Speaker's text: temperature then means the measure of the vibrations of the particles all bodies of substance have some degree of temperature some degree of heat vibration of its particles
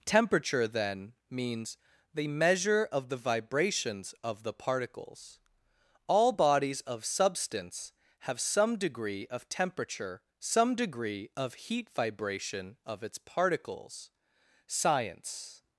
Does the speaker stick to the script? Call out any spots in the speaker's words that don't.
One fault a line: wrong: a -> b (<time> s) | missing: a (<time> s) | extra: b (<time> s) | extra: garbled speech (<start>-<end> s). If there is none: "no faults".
extra: science (14.7 s)